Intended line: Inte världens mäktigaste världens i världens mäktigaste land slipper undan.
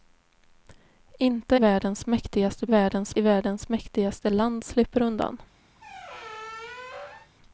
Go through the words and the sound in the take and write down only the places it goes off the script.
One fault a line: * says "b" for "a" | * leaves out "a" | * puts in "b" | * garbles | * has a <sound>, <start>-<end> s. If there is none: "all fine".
* has a squeak, 5.8-7.3 s